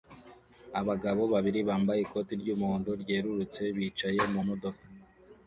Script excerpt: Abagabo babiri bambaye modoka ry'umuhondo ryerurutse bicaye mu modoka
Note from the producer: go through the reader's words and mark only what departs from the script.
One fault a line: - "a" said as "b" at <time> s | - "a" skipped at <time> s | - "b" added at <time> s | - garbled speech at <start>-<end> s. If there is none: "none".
- "modoka" said as "ikoti" at 2.0 s